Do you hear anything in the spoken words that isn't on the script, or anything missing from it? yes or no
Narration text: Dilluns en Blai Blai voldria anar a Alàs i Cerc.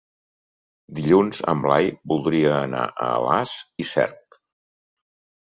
yes